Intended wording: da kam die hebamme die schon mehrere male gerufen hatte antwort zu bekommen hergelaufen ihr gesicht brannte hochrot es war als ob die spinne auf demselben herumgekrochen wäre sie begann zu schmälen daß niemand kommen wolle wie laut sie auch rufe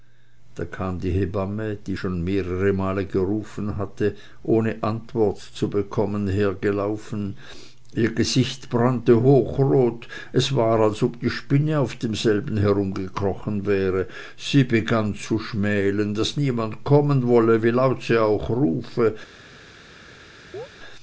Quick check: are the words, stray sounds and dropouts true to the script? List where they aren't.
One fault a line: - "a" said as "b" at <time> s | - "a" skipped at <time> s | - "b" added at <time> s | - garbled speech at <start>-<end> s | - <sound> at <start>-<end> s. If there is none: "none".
- "ohne" added at 4.4 s
- chirp at 20.5-20.7 s